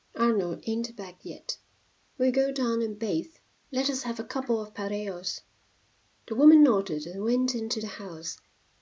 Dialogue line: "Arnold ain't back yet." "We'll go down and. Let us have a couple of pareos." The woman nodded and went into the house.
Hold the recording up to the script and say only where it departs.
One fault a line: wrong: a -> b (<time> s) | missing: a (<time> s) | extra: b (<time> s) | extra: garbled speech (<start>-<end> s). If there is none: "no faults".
extra: bathe (3.0 s)